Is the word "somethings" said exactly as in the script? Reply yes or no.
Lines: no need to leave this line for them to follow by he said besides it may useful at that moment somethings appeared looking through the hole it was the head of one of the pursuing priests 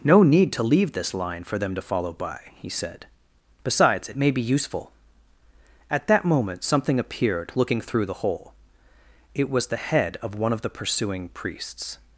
no